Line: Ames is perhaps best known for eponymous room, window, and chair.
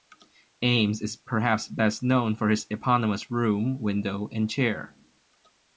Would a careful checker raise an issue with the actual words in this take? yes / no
yes